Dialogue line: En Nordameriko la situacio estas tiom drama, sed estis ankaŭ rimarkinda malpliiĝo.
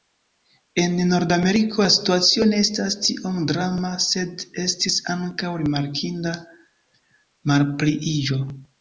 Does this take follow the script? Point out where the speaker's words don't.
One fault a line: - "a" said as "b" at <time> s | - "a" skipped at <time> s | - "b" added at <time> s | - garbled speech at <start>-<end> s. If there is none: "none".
- "ne" added at 2.5 s